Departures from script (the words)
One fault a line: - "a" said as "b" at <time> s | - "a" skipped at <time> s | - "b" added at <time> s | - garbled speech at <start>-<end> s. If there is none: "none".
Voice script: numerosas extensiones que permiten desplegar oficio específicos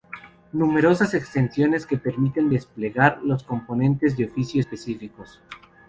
- "los componentes de" added at 3.2 s